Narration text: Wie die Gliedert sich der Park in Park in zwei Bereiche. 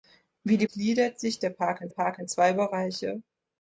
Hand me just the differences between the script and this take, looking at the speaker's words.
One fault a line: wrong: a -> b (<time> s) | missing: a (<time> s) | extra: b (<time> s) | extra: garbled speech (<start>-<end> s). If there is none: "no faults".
no faults